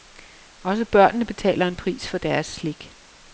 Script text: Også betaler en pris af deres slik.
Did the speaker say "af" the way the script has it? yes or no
no